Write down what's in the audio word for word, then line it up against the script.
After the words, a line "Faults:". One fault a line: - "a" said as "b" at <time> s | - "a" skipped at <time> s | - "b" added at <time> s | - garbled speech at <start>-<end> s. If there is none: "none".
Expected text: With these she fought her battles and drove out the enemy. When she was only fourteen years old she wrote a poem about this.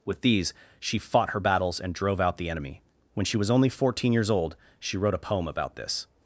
With these she fought her battles and drove out the enemy. When she was only fourteen years old she wrote a poem about this.
Faults:
none